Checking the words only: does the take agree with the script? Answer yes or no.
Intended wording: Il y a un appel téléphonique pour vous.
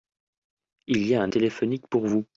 no